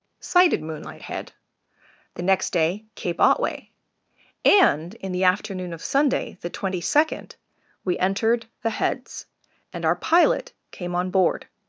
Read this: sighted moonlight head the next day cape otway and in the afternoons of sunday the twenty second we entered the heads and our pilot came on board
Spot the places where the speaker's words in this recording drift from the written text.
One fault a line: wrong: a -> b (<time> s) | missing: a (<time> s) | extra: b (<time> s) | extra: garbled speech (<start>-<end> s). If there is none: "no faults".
wrong: afternoons -> afternoon (5.2 s)